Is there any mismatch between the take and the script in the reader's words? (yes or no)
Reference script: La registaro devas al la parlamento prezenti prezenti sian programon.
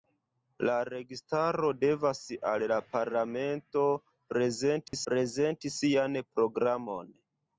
no